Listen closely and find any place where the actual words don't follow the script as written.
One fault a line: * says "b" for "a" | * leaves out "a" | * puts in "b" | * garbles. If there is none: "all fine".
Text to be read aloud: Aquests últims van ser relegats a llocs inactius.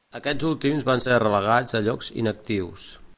all fine